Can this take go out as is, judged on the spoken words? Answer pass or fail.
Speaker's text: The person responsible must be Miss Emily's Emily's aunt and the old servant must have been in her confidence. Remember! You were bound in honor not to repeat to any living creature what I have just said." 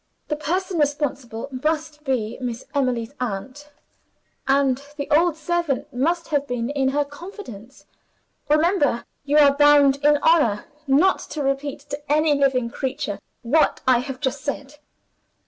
fail